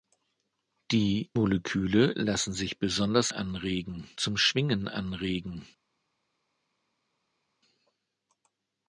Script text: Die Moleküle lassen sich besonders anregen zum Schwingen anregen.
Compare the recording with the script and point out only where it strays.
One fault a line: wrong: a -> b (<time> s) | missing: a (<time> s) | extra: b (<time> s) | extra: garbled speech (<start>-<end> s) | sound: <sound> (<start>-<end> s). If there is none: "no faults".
no faults